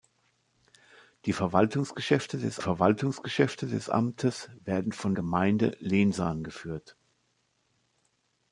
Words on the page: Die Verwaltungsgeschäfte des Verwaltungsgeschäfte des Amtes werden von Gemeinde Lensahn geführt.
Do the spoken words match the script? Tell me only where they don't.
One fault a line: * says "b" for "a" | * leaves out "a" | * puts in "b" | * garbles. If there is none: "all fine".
all fine